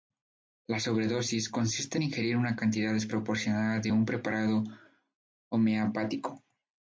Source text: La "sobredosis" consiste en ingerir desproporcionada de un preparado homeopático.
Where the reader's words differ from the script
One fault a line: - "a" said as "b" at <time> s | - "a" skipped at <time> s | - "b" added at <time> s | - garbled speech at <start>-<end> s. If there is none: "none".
- "una cantidad" added at 2.4 s